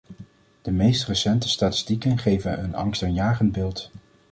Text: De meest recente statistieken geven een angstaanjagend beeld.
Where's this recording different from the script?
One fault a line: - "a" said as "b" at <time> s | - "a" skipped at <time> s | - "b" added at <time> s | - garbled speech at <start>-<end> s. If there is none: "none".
none